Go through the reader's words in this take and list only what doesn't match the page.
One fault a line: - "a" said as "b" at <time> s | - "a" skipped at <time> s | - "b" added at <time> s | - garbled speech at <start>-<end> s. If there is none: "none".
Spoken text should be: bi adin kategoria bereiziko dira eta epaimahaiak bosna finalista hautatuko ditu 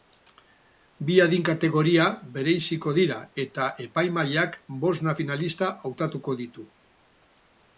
none